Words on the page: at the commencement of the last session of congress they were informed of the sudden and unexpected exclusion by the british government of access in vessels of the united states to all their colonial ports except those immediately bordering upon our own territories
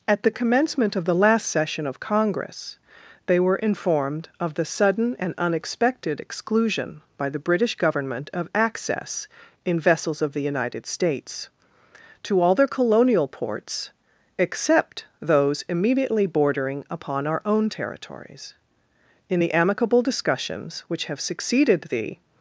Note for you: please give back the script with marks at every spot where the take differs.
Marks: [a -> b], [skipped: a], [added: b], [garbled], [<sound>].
at the commencement of the last session of congress they were informed of the sudden and unexpected exclusion by the british government of access in vessels of the united states to all their colonial ports except those immediately bordering upon our own territories [added: in the amicable discussions which have succeeded the]